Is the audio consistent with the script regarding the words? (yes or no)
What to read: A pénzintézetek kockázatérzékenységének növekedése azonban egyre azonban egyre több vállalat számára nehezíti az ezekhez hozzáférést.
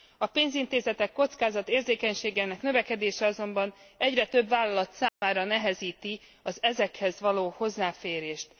no